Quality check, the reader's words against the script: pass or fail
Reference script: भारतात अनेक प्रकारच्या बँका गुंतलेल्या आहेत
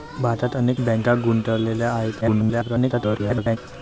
fail